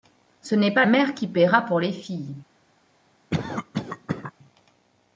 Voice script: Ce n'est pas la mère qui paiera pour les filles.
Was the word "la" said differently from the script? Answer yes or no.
yes